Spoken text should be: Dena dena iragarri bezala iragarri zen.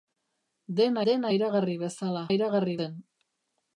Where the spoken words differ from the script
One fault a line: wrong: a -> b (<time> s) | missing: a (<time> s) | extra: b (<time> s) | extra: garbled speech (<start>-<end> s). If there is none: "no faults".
no faults